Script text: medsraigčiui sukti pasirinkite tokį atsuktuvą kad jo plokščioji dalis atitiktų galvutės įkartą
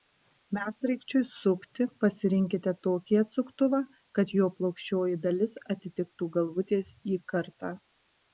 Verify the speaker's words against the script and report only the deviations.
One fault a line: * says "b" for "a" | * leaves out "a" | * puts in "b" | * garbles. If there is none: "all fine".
all fine